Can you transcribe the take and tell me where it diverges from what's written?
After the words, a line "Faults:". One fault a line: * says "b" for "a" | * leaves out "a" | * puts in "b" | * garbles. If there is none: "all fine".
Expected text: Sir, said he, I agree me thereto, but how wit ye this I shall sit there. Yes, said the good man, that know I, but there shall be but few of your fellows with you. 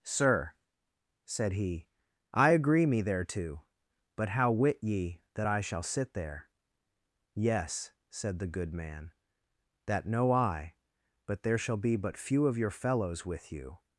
Sir, said he, I agree me thereto, but how wit ye that I shall sit there. Yes, said the good man, that know I, but there shall be but few of your fellows with you.
Faults:
* says "that" for "this"